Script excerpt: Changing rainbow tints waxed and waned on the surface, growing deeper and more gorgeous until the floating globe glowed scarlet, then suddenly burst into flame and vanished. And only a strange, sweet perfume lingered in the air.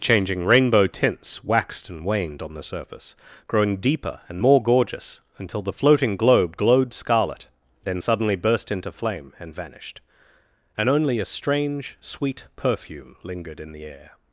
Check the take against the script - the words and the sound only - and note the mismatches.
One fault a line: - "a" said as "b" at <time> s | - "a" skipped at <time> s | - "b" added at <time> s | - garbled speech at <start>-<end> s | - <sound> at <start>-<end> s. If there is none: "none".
none